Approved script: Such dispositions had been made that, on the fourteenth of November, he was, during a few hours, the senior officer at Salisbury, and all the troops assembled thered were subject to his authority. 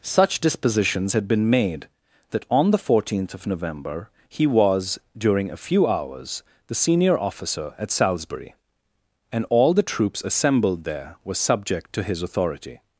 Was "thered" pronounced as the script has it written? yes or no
no